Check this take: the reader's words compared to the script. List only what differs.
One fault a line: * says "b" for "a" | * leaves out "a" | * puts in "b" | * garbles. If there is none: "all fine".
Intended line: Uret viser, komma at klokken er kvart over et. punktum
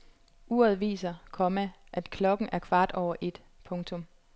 all fine